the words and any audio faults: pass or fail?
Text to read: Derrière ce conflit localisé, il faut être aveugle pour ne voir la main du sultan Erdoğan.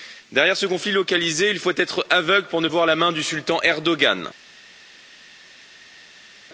pass